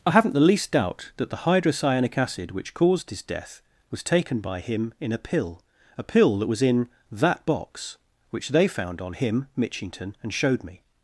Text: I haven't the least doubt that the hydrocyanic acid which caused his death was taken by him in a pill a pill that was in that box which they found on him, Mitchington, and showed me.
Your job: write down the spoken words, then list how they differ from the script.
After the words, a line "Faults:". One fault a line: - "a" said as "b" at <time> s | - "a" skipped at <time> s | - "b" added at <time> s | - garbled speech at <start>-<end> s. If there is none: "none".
I haven't the least doubt that the hydrocyanic acid which caused his death was taken by him in a pill a pill that was in that box which they found on him, Mitchington, and showed me.
Faults:
none